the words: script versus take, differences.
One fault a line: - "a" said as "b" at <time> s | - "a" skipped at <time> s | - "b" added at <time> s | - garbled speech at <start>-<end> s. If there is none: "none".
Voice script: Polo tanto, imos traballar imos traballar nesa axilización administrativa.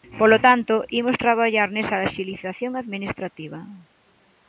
- "imos traballar" skipped at 1.7 s